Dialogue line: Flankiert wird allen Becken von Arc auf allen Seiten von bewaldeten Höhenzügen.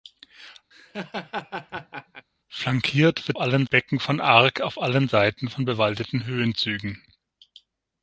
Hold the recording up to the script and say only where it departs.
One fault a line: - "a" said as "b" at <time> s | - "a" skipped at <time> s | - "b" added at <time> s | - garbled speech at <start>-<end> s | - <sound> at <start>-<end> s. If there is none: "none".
- laugh at 0.7-2.3 s